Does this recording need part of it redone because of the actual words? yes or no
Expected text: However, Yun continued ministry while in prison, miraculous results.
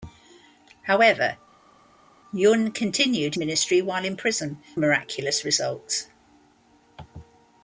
no